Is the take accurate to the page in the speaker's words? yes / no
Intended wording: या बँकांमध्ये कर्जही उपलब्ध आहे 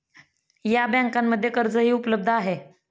yes